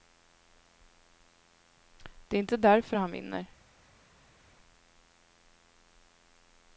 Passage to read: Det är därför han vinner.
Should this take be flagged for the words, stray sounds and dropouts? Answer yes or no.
yes